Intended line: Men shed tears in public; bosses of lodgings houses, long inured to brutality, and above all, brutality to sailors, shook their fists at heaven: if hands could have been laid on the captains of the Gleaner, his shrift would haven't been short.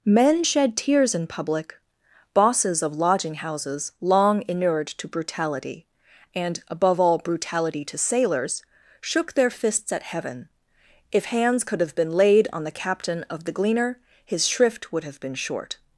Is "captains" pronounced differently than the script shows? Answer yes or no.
yes